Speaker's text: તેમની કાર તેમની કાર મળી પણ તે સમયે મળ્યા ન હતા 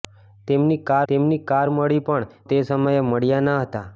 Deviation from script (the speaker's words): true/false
false